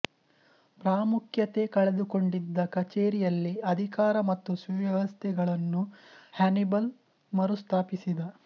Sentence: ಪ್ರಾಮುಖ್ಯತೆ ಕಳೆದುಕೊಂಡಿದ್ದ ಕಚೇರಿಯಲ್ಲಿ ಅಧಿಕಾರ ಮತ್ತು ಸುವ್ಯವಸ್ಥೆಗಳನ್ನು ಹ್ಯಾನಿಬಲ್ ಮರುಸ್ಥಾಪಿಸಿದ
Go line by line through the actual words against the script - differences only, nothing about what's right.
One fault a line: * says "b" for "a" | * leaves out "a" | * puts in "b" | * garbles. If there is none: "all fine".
all fine